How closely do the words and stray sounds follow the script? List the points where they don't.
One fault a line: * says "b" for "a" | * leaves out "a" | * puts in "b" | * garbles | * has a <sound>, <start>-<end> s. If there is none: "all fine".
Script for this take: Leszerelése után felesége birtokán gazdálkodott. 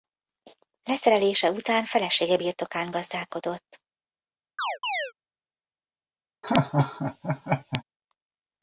* has a chirp, 4.6-5.1 s
* has a laugh, 6.4-7.8 s